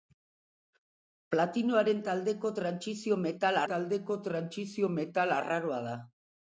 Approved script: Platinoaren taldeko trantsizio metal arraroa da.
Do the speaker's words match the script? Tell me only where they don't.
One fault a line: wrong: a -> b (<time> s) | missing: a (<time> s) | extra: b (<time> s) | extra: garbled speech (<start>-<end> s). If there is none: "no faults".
extra: taldeko trantsizio metal (3.7 s)